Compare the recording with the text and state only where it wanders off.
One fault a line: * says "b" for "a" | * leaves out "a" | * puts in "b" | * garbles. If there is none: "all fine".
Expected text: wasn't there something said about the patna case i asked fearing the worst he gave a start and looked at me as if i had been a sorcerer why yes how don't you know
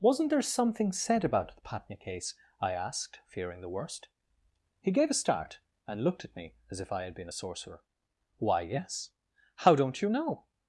all fine